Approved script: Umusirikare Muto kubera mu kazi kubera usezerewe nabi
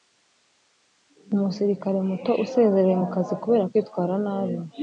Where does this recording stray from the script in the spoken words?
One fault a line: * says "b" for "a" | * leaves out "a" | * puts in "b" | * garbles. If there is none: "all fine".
* says "usezerewe" for "kubera"
* says "kwitwara" for "usezerewe"